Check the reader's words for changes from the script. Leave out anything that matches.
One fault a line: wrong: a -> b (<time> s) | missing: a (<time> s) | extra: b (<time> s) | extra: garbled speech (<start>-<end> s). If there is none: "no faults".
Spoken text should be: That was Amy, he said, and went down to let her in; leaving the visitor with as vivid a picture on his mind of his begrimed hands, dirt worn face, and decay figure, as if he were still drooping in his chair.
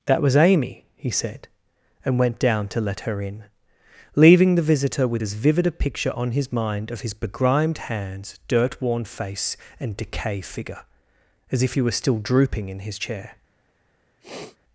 no faults